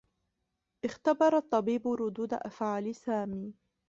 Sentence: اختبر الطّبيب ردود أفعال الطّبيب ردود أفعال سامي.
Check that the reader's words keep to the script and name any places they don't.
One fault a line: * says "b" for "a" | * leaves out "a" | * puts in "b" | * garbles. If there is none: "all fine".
* leaves out "الطّبيب ردود أفعال"